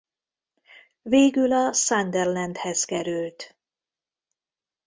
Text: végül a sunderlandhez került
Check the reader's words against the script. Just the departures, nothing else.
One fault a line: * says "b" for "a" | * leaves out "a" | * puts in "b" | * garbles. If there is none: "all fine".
all fine